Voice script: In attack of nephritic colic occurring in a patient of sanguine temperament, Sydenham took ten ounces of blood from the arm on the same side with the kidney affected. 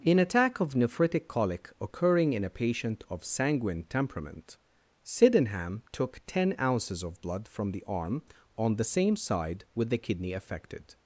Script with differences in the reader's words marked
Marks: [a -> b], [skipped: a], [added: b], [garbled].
In attack of nephritic colic occurring in a patient of sanguine temperament, Sydenham took ten ounces of blood from the arm on the same side with the kidney affected.